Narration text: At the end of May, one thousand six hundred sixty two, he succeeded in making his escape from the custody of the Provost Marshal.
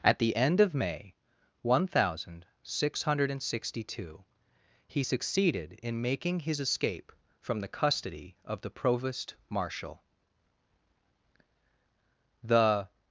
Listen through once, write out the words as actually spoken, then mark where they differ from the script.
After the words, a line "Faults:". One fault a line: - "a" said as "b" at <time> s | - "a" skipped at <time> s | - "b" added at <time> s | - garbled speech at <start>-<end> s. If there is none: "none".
At the end of May, one thousand six hundred sixty two, he succeeded in making his escape from the custody of the Provost Marshal. The
Faults:
- "The" added at 12.4 s